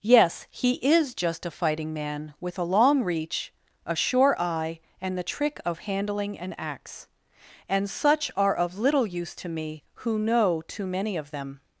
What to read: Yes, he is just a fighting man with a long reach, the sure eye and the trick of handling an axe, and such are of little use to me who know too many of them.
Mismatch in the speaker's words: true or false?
true